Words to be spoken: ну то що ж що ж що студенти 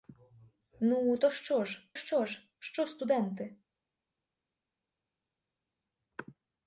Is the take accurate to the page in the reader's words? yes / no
yes